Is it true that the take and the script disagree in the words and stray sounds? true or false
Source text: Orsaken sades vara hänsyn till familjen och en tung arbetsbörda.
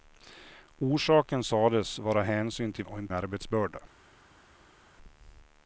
true